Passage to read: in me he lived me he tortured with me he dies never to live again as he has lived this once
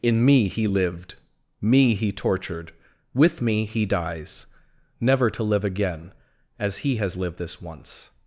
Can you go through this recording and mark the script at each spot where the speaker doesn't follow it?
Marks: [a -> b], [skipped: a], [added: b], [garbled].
in me he lived me he tortured with me he dies never to live again as he has lived this once